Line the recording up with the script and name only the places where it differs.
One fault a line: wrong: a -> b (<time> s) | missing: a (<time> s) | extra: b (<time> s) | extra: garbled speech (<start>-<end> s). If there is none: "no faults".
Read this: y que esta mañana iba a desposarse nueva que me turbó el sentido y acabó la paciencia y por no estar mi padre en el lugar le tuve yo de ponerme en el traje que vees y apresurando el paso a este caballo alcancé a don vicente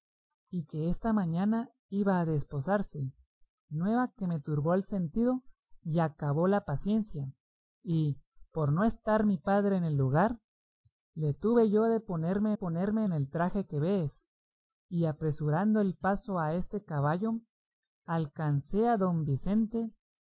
extra: ponerme (12.5 s)